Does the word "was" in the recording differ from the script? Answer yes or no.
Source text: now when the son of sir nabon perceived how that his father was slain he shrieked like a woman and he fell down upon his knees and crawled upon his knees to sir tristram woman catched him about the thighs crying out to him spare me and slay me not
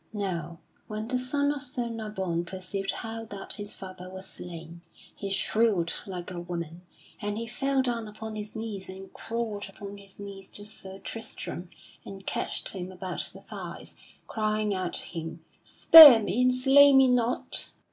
no